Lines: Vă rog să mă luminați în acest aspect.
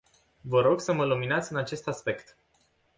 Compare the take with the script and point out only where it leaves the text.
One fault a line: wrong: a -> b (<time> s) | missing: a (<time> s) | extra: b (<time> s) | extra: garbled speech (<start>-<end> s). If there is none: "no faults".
no faults